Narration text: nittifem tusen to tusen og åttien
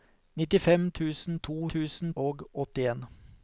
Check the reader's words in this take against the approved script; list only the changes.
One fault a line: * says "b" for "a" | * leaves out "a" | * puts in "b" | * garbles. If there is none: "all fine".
all fine